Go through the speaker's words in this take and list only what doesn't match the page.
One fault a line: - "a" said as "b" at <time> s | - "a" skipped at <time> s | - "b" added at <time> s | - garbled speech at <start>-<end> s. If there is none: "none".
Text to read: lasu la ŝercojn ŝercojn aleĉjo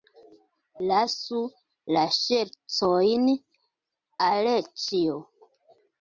- "ŝercojn" skipped at 3.3 s